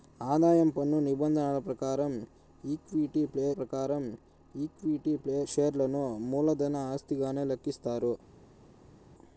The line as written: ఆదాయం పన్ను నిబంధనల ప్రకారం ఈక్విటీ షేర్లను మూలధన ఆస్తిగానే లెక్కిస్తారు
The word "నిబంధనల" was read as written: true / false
true